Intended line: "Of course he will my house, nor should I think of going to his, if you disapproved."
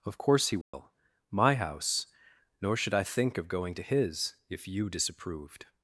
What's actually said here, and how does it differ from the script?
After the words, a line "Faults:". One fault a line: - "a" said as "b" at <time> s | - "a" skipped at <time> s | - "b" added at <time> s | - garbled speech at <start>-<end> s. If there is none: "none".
"Of course he will my house, nor should I think of going to his, if you disapproved."
Faults:
none